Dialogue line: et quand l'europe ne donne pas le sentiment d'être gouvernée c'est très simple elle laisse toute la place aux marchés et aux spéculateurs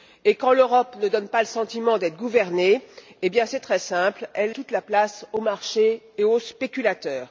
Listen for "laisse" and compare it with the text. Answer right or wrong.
wrong